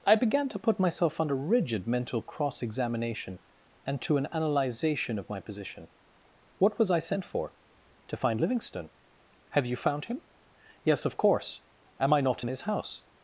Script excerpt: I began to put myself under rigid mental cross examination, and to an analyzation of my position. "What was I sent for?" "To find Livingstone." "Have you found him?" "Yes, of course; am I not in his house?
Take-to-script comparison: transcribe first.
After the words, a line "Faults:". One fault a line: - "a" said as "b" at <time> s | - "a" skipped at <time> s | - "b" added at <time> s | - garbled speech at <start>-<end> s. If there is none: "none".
I began to put myself under rigid mental cross examination, and to an analyzation of my position. "What was I sent for?" "To find Livingstone." "Have you found him?" "Yes, of course; am I not in his house?
Faults:
none